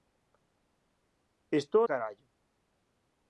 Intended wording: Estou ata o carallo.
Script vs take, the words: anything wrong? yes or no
yes